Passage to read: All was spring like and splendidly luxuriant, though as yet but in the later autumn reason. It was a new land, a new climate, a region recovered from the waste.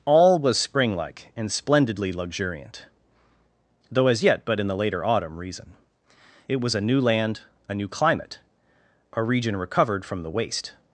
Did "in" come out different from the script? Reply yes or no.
no